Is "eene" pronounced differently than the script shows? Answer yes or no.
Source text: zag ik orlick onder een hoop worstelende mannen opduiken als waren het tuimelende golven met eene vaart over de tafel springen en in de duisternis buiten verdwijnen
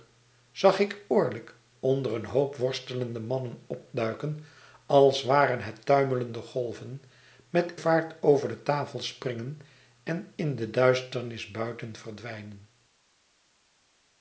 yes